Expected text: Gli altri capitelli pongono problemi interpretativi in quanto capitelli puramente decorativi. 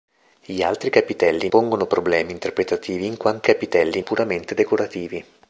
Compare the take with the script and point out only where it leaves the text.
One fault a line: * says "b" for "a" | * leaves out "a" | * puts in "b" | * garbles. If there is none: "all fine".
all fine